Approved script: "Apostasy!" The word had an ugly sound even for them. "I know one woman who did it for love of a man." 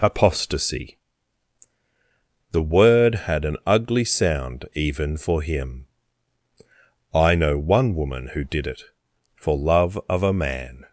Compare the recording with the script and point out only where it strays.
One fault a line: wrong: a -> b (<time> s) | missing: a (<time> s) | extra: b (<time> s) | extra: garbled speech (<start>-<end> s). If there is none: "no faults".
wrong: them -> him (5.4 s)